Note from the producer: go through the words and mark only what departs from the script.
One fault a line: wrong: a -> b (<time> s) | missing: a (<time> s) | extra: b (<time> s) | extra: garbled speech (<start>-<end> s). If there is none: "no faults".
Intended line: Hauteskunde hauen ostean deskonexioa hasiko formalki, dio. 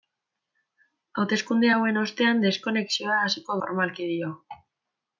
no faults